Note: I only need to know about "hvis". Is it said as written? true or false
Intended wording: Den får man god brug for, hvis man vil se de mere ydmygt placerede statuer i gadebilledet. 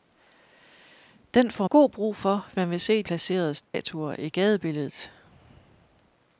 false